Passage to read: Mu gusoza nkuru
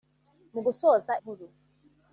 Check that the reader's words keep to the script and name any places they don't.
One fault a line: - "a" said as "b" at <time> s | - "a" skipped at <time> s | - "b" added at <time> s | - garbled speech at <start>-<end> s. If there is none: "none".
none